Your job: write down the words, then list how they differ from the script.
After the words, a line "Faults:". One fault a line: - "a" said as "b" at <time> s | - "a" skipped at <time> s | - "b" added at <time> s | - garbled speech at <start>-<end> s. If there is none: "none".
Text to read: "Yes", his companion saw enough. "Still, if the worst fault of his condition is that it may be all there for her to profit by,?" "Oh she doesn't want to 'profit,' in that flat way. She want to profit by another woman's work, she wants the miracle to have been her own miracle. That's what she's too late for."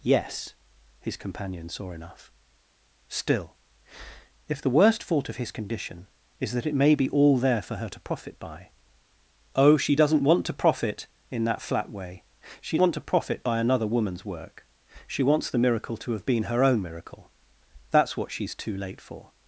"Yes", his companion saw enough. "Still, if the worst fault of his condition is that it may be all there for her to profit by,?" "Oh she doesn't want to 'profit,' in that flat way. She want to profit by another woman's work, she wants the miracle to have been her own miracle. That's what she's too late for."
Faults:
none